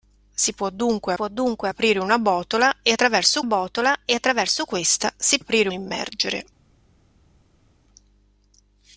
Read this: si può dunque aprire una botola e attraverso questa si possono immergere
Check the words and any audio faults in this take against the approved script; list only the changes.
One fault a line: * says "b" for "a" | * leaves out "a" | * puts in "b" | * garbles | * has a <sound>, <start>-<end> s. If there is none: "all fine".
* puts in "può dunque"
* puts in "botola e attraverso"
* says "aprire" for "possono"